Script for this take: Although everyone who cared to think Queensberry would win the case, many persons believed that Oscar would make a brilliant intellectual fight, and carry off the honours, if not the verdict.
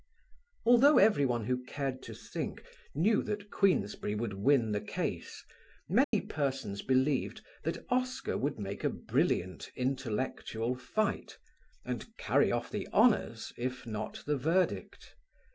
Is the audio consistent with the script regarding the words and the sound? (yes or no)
no